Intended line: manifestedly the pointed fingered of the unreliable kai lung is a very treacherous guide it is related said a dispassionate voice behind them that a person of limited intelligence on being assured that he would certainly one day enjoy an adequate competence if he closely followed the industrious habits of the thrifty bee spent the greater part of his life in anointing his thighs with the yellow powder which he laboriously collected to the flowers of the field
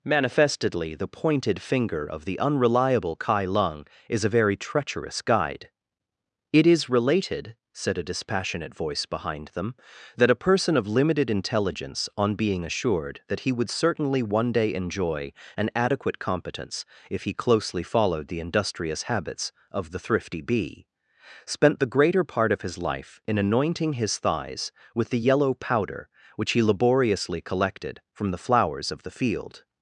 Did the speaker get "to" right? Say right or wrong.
wrong